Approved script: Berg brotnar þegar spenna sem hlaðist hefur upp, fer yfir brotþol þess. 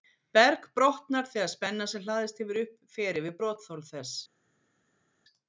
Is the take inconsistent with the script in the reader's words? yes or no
no